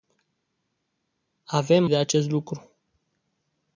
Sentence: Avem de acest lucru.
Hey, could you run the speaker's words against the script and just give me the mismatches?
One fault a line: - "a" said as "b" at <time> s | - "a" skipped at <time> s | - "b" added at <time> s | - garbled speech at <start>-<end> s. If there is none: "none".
none